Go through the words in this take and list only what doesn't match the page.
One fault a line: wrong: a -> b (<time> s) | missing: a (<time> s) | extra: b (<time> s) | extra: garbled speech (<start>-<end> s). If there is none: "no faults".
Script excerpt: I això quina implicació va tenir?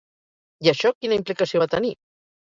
no faults